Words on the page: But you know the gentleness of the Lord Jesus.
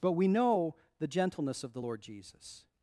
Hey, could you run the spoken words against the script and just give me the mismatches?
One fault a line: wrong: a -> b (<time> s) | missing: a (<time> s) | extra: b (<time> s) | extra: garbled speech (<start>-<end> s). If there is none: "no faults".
wrong: you -> we (0.1 s)